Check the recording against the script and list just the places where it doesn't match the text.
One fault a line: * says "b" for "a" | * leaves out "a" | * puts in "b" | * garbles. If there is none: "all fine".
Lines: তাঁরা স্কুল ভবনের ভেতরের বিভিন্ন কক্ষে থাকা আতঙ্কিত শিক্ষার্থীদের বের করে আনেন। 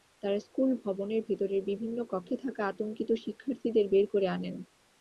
all fine